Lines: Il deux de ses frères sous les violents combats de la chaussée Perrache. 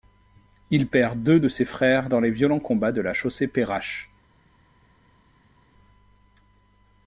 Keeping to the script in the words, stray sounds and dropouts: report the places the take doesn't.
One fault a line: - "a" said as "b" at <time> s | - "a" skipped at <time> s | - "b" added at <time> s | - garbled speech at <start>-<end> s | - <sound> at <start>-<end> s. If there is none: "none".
- "perd" added at 0.8 s
- "sous" said as "dans" at 2.1 s